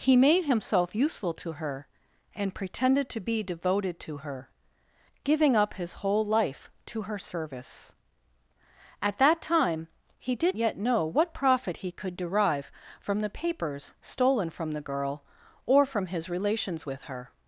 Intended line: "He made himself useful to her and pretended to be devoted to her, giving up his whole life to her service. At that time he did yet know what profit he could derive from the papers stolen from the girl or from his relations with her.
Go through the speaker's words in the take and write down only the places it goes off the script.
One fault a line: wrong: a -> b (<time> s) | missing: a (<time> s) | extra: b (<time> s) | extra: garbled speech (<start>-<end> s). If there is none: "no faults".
no faults